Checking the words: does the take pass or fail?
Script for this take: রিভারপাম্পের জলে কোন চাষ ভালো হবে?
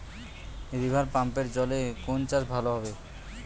pass